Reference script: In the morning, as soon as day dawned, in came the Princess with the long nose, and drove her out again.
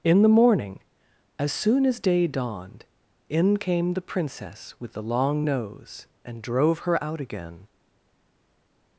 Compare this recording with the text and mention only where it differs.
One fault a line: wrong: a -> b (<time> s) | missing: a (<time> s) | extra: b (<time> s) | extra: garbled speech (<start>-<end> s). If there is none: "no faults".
no faults